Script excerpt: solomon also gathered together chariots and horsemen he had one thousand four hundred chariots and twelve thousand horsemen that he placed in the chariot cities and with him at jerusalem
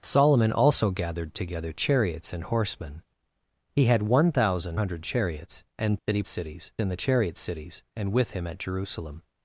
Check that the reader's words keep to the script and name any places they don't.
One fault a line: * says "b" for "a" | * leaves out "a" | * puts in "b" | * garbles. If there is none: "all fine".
* leaves out "four"
* leaves out "twelve thousand horsemen"
* says "cities" for "placed"